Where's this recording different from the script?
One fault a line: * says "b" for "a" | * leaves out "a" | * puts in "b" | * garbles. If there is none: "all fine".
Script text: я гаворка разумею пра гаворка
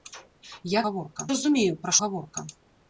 all fine